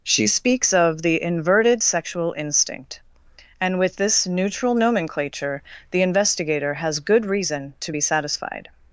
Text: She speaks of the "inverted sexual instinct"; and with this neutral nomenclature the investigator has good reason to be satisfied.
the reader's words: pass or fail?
pass